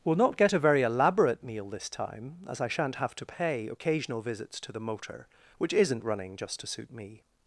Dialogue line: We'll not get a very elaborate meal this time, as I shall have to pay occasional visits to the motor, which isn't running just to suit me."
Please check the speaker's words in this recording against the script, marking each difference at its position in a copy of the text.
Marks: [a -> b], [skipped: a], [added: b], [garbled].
We'll not get a very elaborate meal this time, as I [shall -> shan't] have to pay occasional visits to the motor, which isn't running just to suit me."